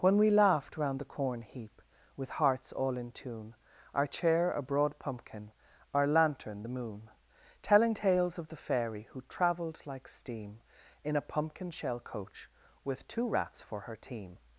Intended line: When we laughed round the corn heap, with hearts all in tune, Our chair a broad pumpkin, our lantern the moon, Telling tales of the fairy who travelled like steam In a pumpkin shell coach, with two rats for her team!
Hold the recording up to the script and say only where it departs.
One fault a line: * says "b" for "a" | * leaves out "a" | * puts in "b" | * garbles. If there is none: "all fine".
all fine